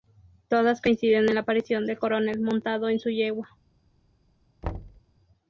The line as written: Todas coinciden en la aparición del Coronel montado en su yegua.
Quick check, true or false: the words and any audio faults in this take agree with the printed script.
false